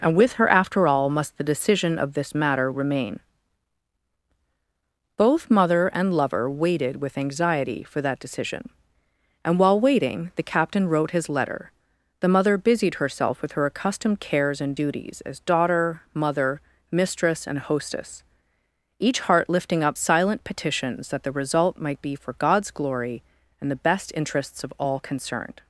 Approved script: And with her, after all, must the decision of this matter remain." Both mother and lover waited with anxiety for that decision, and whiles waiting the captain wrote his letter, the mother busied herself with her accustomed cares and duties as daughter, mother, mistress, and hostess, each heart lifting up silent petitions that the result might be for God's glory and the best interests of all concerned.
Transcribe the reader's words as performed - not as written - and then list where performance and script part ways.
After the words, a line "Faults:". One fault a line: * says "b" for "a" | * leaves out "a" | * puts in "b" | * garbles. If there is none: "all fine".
And with her, after all, must the decision of this matter remain." Both mother and lover waited with anxiety for that decision, and while waiting the captain wrote his letter, the mother busied herself with her accustomed cares and duties as daughter, mother, mistress, and hostess, each heart lifting up silent petitions that the result might be for God's glory and the best interests of all concerned.
Faults:
* says "while" for "whiles"